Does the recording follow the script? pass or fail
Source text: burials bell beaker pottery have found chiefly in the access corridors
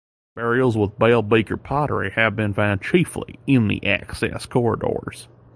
fail